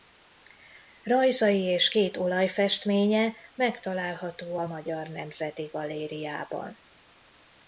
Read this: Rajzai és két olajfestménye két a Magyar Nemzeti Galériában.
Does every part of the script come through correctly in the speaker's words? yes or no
no